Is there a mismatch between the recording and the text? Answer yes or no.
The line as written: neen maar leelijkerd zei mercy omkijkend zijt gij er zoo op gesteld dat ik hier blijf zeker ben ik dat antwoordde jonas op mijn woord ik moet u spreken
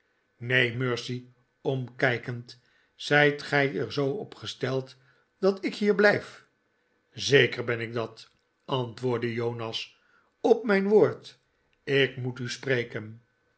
yes